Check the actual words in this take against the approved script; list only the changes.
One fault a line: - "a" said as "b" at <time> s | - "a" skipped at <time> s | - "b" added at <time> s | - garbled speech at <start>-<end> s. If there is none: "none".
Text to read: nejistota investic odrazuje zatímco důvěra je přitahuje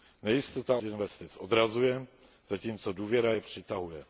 none